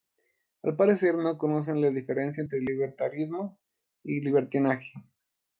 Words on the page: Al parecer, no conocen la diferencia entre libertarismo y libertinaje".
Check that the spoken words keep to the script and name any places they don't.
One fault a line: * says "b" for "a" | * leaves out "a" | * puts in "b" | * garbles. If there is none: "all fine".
all fine